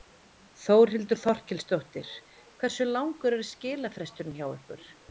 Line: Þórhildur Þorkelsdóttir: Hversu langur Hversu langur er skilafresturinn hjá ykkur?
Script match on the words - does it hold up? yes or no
no